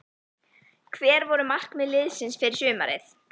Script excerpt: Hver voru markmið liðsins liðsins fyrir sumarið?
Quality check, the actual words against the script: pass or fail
fail